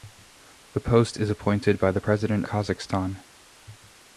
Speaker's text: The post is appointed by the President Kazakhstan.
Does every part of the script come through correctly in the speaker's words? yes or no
yes